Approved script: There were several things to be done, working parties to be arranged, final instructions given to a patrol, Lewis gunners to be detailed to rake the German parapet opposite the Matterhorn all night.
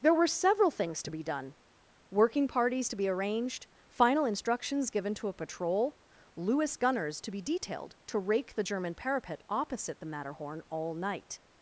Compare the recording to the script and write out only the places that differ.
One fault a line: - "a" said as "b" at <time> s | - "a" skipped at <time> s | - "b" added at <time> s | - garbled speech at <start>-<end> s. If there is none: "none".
none